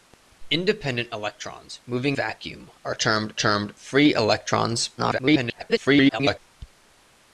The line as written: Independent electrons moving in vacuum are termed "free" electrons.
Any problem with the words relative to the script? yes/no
yes